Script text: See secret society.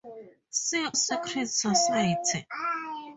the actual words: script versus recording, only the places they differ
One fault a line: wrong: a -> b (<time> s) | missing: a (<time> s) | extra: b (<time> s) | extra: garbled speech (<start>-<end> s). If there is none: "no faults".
no faults